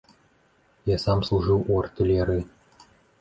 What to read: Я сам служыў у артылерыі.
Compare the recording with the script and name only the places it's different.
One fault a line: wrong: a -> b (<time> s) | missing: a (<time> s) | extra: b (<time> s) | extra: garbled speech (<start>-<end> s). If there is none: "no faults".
no faults